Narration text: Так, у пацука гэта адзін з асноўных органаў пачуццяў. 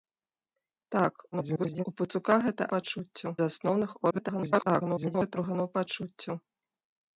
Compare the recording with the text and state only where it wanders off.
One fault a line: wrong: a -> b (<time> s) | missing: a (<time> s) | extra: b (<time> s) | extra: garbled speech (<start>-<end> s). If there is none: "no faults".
extra: garbled speech (1.3-1.8 s)
wrong: адзін -> пачуццяў (2.8 s)
extra: garbled speech (4.1-5.4 s)